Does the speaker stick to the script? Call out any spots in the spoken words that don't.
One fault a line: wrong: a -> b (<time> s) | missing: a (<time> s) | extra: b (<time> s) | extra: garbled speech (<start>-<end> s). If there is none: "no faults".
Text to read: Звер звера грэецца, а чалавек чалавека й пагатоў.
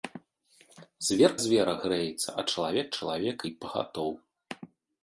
no faults